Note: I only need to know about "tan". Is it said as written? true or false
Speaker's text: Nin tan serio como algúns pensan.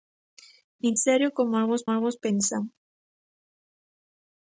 false